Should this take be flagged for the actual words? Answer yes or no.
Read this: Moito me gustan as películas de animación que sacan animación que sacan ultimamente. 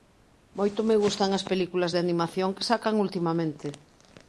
yes